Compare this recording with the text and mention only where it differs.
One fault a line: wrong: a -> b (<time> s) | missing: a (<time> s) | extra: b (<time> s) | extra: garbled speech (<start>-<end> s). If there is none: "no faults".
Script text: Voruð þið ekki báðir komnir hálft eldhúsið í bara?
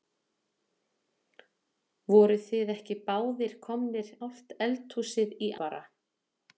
no faults